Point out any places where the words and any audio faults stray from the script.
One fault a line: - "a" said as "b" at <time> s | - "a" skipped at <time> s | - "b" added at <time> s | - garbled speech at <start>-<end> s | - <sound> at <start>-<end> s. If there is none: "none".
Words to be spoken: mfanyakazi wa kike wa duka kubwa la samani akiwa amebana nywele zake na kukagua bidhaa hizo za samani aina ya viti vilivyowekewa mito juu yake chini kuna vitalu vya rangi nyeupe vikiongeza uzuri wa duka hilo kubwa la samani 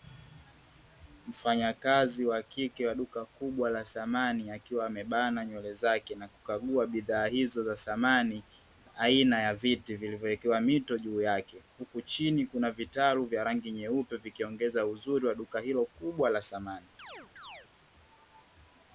- "huku" added at 11.8 s
- chirp at 17.0-17.7 s